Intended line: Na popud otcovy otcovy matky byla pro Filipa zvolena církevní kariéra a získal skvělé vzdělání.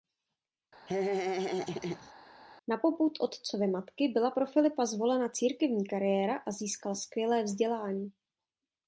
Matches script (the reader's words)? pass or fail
fail